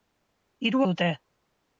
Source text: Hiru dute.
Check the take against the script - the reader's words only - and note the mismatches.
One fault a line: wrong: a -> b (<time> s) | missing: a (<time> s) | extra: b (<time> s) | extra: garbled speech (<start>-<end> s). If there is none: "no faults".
no faults